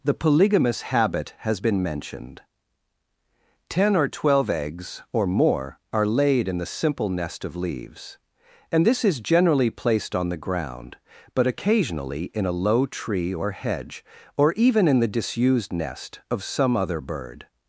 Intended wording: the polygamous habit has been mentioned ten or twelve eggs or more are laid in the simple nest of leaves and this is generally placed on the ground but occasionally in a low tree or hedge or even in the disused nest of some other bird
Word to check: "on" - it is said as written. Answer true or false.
true